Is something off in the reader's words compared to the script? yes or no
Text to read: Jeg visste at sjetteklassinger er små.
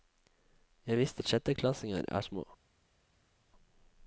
no